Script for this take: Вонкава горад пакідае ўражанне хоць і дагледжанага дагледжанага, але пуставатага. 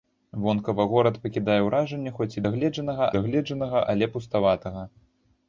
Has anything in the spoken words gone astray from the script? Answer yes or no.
no